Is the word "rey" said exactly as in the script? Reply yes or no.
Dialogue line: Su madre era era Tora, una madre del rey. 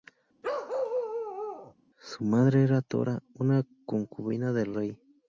yes